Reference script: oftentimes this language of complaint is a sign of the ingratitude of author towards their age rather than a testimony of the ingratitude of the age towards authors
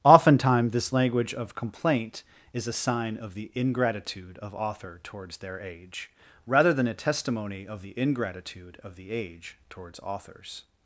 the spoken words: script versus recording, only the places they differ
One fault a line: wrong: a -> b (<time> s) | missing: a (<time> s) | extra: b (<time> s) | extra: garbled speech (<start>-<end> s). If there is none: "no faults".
no faults